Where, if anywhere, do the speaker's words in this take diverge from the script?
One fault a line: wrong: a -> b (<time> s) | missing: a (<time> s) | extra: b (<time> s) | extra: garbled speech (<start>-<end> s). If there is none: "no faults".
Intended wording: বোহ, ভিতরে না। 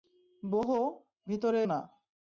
no faults